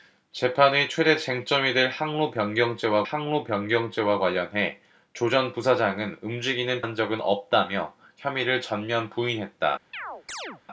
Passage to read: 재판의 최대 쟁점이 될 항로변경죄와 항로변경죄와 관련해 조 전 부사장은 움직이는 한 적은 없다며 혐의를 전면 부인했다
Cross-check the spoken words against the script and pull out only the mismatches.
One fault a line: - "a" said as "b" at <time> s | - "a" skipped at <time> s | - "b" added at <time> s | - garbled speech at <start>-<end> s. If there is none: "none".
none